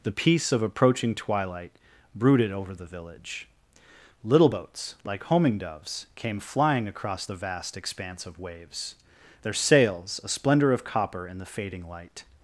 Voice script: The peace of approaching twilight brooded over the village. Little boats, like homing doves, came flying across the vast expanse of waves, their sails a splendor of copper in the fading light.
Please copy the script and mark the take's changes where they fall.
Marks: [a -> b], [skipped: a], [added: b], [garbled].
The peace of approaching twilight brooded over the village. Little boats, like homing doves, came flying across the vast expanse of waves, their sails a splendor of copper in the fading light.